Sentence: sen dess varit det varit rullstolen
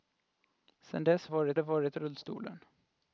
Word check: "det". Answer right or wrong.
right